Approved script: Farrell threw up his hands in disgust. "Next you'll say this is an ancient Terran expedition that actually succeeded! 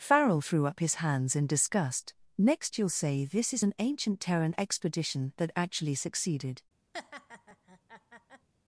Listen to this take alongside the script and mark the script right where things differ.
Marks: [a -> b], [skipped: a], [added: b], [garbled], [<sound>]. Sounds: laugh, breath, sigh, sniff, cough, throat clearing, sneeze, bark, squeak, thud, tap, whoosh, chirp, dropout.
Farrell threw up his hands in disgust. "Next you'll say this is an ancient Terran expedition that actually succeeded! [laugh]